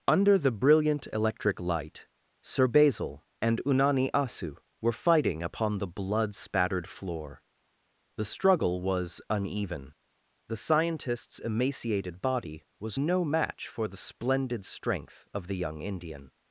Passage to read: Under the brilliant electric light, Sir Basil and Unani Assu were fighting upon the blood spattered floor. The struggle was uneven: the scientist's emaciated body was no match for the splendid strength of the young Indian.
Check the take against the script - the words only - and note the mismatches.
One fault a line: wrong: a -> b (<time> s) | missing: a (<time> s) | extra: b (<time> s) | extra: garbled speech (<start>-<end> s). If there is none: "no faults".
no faults